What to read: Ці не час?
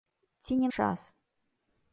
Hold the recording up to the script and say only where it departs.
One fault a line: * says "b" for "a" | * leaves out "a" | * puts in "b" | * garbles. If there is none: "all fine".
all fine